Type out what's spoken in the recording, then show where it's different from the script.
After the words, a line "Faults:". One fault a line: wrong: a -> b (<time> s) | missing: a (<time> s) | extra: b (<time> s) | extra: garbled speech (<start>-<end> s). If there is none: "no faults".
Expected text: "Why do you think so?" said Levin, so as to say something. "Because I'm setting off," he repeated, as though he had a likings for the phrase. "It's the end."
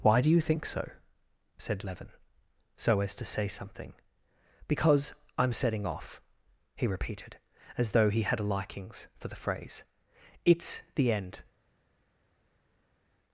"Why do you think so?" said Levin, so as to say something. "Because I'm setting off," he repeated, as though he had a likings for the phrase. "It's the end."
Faults:
no faults